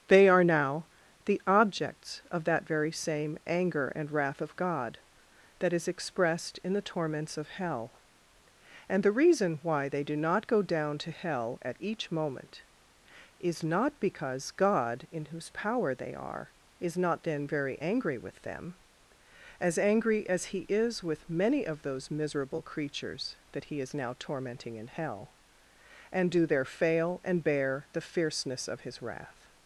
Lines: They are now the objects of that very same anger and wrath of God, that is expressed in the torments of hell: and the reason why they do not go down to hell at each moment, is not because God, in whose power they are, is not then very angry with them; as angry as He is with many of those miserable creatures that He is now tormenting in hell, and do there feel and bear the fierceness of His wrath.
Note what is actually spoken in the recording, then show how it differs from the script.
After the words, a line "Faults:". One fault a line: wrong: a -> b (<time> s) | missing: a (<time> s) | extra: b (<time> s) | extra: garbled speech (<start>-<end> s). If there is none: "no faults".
They are now the objects of that very same anger and wrath of God, that is expressed in the torments of hell: and the reason why they do not go down to hell at each moment, is not because God, in whose power they are, is not then very angry with them; as angry as He is with many of those miserable creatures that He is now tormenting in hell, and do there fail and bear the fierceness of His wrath.
Faults:
wrong: feel -> fail (26.6 s)